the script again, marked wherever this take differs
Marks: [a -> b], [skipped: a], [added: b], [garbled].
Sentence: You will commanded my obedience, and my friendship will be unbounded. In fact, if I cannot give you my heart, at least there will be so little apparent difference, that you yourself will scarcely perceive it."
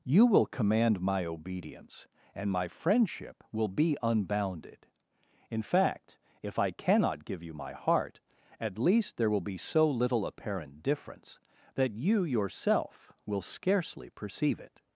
You will [commanded -> command] my obedience, and my friendship will be unbounded. In fact, if I cannot give you my heart, at least there will be so little apparent difference, that you yourself will scarcely perceive it."